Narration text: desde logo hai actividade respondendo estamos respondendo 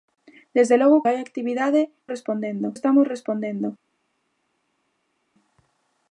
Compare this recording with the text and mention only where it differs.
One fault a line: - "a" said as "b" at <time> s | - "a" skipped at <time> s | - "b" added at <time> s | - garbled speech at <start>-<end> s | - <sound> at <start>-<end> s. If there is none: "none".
none